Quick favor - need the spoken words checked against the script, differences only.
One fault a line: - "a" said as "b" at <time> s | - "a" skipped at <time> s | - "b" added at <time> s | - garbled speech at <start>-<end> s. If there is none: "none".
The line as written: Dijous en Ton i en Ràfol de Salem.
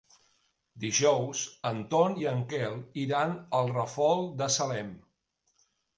- "Quel iran al" added at 2.5 s